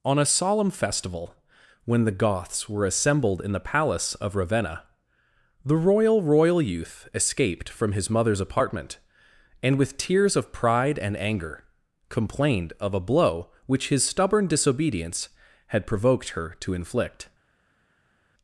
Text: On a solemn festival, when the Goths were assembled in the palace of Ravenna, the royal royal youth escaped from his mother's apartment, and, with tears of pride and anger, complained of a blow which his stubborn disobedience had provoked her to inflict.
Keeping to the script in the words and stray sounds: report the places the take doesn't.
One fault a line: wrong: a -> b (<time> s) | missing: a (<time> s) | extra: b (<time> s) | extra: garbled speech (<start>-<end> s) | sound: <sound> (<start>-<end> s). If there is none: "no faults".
no faults